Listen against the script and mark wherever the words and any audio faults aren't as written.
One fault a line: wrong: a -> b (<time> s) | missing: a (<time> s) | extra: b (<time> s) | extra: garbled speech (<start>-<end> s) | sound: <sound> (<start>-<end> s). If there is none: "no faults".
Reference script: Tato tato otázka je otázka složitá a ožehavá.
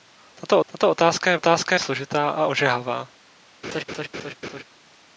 sound: laugh (3.6-4.6 s)